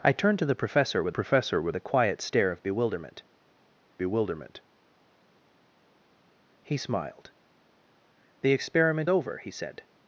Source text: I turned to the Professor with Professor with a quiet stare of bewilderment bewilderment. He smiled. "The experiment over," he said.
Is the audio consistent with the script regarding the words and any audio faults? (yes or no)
yes